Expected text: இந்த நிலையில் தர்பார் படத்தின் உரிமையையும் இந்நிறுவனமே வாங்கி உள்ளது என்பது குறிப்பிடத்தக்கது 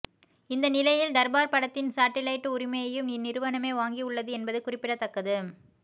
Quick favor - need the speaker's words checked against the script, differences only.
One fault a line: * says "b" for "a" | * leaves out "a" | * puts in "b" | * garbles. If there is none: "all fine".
* puts in "சாட்டிலைட்"